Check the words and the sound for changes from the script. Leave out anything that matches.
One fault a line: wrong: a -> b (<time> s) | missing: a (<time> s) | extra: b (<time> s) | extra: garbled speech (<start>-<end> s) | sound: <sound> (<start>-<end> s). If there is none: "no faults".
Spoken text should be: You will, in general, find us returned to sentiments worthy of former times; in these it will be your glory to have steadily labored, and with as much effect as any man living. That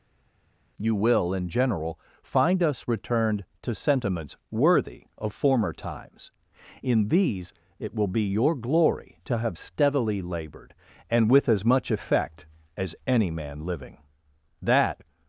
no faults